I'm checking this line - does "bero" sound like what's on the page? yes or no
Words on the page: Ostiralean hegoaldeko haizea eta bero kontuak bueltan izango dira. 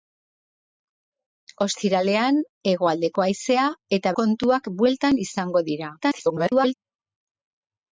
no